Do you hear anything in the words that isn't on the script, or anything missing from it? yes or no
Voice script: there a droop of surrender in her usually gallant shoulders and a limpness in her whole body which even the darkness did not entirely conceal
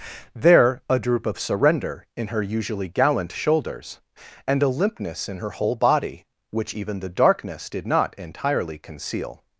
no